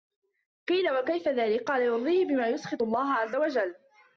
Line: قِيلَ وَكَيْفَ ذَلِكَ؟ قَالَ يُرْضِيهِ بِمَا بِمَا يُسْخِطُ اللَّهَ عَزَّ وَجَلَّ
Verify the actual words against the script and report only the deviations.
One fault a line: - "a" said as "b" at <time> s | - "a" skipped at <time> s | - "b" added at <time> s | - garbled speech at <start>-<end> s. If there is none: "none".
- "بِمَا" skipped at 2.5 s